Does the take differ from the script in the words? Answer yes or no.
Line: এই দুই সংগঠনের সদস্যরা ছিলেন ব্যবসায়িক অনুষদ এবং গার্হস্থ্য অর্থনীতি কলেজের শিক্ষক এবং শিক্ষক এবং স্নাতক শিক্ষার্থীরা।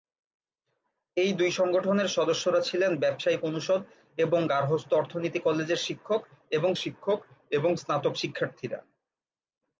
no